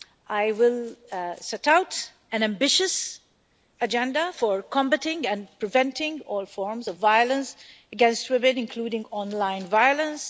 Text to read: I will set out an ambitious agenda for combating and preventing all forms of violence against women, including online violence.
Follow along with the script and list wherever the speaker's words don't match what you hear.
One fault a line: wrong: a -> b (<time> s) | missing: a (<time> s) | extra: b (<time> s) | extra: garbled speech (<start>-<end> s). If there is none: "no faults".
no faults